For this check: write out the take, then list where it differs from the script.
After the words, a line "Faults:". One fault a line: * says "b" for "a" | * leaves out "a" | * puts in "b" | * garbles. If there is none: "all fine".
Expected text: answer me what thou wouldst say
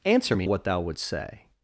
answer me what thou wouldst say
Faults:
all fine